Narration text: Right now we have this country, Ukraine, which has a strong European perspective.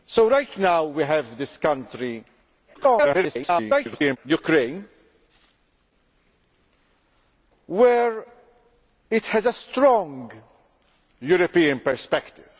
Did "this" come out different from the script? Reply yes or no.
no